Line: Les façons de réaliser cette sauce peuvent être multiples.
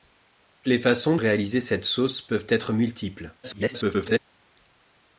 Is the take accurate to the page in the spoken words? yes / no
no